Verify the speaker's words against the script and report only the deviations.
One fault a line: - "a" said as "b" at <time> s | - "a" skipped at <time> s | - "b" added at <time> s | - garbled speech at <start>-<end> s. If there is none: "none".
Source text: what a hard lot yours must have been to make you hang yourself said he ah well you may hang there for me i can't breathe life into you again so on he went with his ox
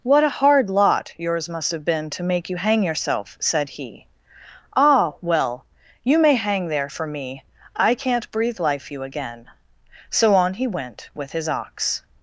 - "into" skipped at 8.9 s